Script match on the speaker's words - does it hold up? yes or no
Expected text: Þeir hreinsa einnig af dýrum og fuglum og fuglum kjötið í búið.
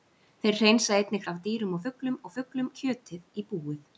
yes